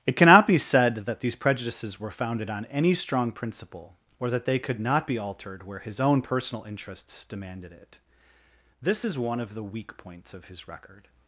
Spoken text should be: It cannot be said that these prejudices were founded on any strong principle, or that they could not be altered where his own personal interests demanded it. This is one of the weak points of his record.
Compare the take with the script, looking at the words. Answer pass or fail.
pass